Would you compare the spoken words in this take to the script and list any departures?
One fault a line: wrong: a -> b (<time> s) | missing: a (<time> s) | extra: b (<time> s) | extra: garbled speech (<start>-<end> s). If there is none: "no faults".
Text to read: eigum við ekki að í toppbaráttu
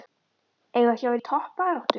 no faults